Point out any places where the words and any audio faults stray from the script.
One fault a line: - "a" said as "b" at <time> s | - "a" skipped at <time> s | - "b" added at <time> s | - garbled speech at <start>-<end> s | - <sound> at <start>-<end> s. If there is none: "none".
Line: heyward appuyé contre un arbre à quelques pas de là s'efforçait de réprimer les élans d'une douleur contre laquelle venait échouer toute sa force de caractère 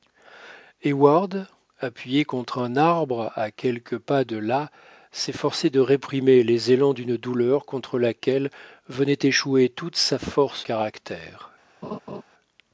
- "de" skipped at 10.7 s
- laugh at 11.8-12.2 s